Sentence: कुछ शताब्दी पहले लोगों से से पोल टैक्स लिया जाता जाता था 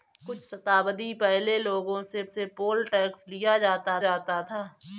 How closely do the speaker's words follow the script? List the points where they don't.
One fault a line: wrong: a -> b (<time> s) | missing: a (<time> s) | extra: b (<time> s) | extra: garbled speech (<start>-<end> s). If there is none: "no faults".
no faults